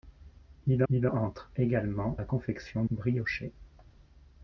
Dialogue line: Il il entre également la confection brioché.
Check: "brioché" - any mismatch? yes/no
no